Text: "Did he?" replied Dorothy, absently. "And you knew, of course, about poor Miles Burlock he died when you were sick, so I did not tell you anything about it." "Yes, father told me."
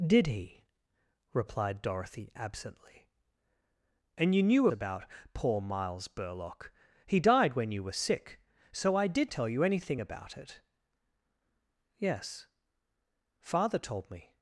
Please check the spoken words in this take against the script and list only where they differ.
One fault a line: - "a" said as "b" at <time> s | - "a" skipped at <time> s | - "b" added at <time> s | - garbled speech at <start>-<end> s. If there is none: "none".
- "of course" skipped at 4.7 s
- "not" skipped at 9.3 s